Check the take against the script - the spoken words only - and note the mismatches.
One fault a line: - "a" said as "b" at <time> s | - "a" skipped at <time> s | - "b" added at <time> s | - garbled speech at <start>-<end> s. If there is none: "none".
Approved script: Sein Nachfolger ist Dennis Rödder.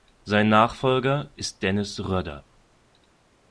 none